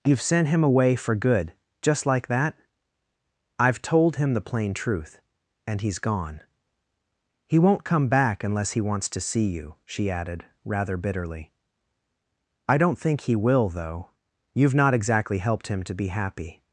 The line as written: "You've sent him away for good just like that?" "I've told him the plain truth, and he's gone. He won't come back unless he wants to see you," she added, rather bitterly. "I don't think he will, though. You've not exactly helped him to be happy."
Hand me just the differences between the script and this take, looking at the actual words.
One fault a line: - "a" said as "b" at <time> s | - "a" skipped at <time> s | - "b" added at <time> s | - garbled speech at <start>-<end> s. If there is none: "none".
none